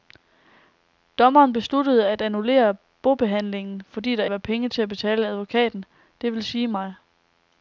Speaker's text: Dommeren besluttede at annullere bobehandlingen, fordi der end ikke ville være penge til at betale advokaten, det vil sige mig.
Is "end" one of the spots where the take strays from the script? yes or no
yes